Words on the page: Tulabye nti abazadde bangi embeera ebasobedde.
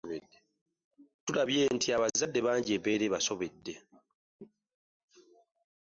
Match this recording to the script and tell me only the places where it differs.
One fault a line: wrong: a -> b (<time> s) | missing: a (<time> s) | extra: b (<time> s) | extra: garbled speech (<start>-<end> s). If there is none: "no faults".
no faults